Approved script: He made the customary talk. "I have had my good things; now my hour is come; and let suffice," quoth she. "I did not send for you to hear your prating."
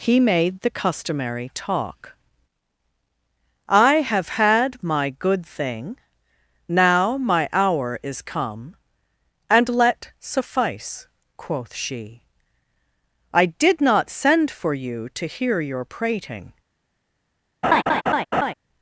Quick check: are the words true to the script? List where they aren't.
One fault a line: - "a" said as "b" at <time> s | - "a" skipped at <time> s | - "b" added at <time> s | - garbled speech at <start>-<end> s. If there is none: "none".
- "things" said as "thing" at 5.5 s